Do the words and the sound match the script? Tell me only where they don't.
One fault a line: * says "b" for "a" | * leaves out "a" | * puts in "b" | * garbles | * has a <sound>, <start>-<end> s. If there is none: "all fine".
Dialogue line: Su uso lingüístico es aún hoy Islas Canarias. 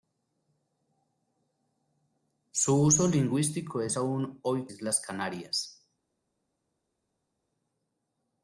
all fine